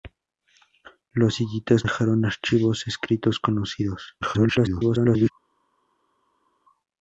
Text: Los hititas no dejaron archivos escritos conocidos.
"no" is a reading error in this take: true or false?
true